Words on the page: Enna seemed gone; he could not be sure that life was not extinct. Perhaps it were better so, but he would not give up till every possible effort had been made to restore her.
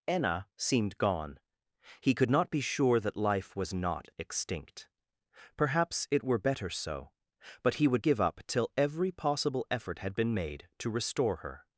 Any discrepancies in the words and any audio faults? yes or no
yes